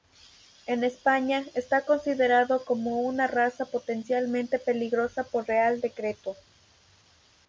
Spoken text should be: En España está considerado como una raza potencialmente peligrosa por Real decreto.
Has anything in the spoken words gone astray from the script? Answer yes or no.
no